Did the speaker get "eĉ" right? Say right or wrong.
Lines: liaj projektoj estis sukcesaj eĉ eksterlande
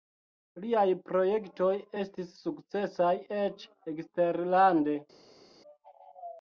right